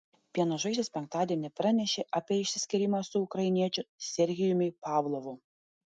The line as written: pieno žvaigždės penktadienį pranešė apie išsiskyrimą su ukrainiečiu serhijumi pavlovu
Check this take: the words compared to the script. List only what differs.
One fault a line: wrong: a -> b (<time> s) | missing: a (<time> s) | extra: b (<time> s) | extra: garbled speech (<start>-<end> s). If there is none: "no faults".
no faults